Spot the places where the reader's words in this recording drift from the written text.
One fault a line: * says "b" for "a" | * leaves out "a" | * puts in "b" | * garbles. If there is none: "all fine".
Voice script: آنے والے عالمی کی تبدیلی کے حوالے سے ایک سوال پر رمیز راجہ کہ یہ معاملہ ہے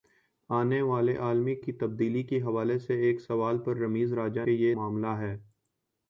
all fine